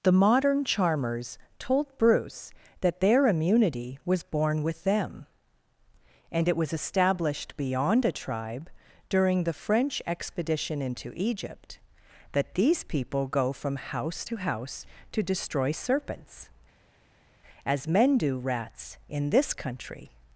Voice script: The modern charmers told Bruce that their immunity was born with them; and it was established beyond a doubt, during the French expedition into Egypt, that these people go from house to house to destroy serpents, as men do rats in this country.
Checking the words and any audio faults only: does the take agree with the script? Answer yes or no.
no